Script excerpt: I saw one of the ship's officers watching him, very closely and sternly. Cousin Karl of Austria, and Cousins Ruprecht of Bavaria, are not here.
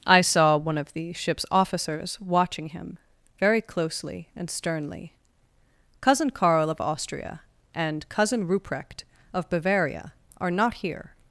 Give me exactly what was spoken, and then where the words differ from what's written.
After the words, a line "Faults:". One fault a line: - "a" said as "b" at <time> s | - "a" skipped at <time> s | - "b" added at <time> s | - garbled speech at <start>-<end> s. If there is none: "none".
I saw one of the ship's officers watching him, very closely and sternly. Cousin Karl of Austria, and Cousin Ruprecht of Bavaria, are not here.
Faults:
- "Cousins" said as "Cousin" at 8.1 s